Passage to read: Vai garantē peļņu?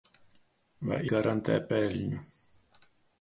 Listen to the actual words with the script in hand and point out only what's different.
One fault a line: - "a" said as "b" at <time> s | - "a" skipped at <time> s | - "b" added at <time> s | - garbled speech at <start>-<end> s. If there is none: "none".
none